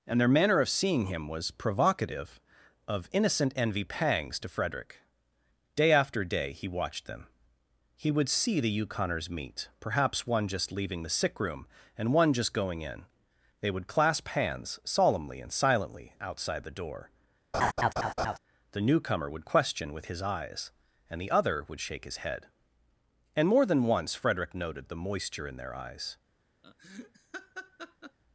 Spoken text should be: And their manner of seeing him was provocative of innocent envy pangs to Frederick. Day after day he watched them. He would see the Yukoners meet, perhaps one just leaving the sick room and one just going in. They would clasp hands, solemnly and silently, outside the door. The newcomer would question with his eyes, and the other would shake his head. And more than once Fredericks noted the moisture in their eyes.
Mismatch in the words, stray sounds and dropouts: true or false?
true